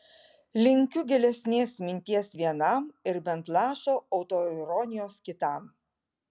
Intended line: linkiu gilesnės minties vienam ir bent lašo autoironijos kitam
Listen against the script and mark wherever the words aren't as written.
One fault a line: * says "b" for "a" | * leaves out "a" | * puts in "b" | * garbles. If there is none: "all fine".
all fine